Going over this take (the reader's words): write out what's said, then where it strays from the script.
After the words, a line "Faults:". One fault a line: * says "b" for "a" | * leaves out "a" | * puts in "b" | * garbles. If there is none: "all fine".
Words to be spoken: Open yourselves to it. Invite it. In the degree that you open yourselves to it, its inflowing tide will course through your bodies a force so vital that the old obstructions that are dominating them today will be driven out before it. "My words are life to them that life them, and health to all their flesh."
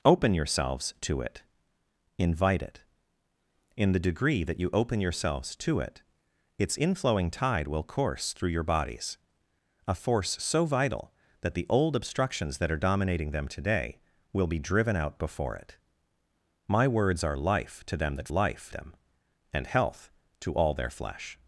Open yourselves to it. Invite it. In the degree that you open yourselves to it, its inflowing tide will course through your bodies a force so vital that the old obstructions that are dominating them today will be driven out before it. "My words are life to them that life them, and health to all their flesh."
Faults:
all fine